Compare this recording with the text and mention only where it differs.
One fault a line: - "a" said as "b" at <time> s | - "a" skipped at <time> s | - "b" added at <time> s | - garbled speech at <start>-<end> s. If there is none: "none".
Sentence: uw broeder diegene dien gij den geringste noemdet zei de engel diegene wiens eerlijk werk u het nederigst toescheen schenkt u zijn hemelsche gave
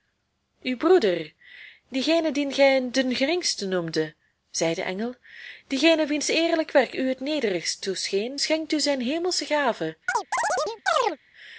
none